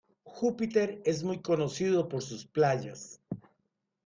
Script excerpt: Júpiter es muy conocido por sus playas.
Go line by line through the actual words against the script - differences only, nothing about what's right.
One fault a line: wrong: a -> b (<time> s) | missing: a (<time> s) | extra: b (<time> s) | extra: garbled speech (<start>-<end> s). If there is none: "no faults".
no faults